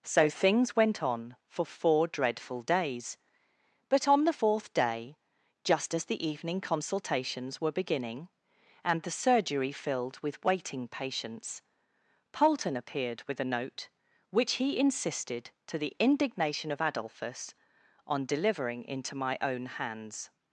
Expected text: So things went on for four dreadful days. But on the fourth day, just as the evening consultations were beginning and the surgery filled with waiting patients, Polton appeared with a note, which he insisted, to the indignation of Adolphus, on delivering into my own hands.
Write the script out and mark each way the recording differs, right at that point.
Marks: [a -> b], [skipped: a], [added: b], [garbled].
So things went on for four dreadful days. But on the fourth day, just as the evening consultations were beginning and the surgery filled with waiting patients, Polton appeared with a note, which he insisted, to the indignation of Adolphus, on delivering into my own hands.